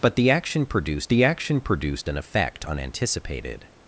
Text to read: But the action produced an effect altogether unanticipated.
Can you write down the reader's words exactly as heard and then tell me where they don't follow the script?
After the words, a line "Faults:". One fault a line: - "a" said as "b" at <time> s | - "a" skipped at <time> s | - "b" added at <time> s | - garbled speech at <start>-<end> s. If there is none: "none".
But the action produced the action produced an effect unanticipated.
Faults:
- "the action produced" added at 1.1 s
- "altogether" skipped at 2.6 s